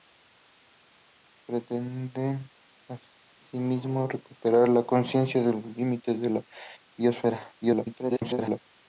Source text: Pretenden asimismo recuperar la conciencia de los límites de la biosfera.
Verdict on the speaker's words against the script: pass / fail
fail